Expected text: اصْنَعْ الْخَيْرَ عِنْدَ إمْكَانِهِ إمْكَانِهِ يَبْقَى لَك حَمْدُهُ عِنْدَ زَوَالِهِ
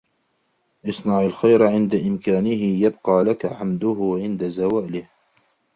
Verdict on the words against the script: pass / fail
fail